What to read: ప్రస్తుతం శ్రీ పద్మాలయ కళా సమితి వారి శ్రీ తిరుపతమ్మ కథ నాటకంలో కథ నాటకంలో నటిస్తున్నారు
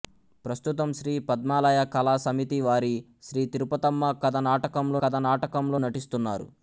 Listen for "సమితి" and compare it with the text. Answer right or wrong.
right